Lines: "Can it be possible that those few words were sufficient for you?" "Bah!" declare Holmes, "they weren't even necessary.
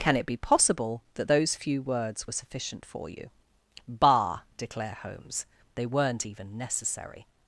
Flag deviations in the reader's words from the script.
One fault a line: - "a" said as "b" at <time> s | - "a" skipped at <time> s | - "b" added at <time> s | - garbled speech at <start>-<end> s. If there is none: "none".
none